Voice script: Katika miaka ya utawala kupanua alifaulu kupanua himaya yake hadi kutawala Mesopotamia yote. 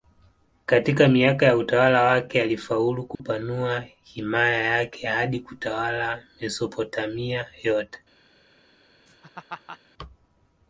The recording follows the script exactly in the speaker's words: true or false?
false